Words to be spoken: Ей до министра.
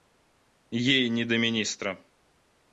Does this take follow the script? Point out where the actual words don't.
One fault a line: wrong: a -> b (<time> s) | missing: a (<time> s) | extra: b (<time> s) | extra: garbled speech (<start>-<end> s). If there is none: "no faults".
extra: не (1.1 s)